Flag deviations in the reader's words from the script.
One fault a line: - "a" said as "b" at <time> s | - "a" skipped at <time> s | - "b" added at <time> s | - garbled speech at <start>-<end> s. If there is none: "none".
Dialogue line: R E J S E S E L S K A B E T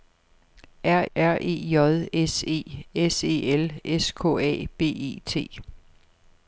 - "r" added at 1.1 s